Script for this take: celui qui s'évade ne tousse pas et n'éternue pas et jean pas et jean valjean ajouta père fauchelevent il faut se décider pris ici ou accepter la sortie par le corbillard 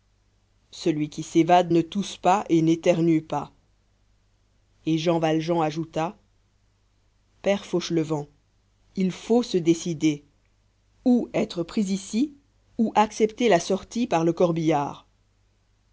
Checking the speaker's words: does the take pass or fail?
fail